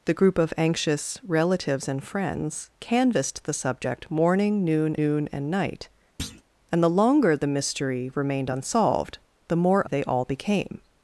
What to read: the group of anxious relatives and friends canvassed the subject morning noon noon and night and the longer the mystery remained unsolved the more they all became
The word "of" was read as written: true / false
true